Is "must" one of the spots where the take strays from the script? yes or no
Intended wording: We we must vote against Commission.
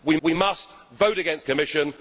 no